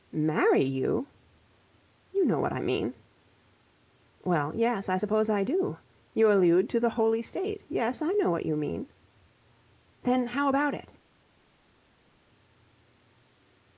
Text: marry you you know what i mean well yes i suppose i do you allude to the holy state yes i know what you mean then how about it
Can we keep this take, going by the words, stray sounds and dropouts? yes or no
yes